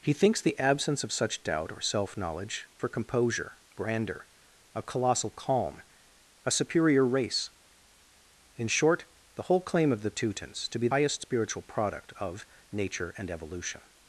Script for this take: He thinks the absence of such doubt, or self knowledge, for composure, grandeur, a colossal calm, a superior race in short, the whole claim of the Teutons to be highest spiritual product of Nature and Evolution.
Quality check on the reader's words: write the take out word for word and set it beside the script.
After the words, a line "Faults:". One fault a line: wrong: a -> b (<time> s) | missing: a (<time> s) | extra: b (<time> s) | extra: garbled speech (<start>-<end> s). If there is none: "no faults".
He thinks the absence of such doubt, or self knowledge, for composure, grandeur, a colossal calm, a superior race in short, the whole claim of the Teutons to be highest spiritual product of Nature and Evolution.
Faults:
no faults